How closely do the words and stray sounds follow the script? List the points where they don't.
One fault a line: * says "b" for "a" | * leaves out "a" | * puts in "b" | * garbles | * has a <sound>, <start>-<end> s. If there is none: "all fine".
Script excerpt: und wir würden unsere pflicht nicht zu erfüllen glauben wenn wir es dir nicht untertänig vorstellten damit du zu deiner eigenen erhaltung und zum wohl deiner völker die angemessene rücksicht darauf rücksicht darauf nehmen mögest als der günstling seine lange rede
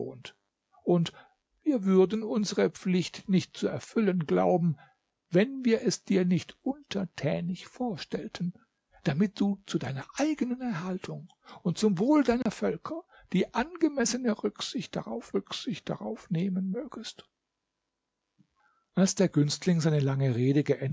* has a dropout, 12.4-12.5 s